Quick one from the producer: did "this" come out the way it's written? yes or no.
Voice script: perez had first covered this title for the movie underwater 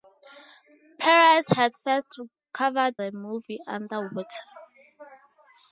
no